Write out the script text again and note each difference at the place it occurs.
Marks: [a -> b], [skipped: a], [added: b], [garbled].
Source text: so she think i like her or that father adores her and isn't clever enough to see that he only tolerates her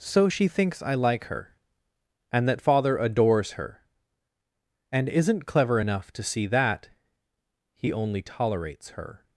so she [think -> thinks] i like her [or -> and] that father adores her and isn't clever enough to see that he only tolerates her